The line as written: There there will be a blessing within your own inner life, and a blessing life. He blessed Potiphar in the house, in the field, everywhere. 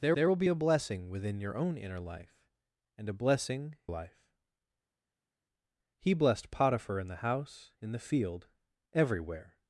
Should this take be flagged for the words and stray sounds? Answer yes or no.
no